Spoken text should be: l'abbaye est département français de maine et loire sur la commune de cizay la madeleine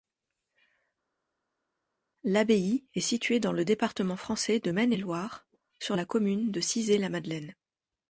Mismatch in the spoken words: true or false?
true